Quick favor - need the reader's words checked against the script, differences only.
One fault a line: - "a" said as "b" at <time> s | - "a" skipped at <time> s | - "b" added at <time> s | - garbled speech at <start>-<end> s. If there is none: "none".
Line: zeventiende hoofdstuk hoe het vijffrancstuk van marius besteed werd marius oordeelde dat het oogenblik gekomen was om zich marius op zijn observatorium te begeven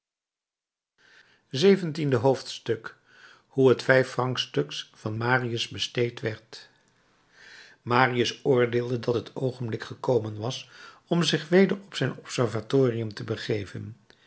- "marius" said as "weder" at 11.5 s